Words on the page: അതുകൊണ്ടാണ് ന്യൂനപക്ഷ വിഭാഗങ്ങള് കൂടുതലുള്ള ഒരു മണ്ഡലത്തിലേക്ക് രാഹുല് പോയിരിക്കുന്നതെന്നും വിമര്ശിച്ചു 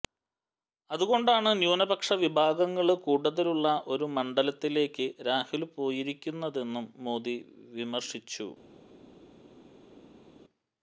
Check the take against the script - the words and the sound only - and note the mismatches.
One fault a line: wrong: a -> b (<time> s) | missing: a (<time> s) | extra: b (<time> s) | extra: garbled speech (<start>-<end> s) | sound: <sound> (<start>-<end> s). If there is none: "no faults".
extra: മോദി (7.0 s)